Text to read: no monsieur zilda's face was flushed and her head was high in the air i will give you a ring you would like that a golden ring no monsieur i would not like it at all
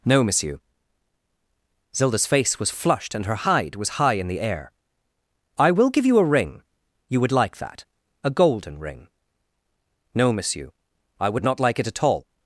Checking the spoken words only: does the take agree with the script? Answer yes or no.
no